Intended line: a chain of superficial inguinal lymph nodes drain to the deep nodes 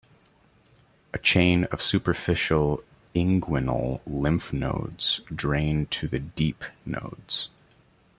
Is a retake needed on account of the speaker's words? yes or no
no